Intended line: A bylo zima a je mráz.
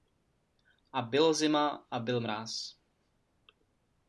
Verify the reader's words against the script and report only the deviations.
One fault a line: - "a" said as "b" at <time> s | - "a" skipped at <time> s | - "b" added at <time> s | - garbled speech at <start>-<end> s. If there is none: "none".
- "je" said as "byl" at 2.0 s